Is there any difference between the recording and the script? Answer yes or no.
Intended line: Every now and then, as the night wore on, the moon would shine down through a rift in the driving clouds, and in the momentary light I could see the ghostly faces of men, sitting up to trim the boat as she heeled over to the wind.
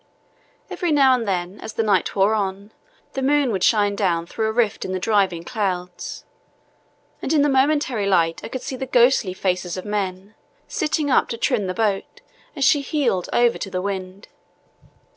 no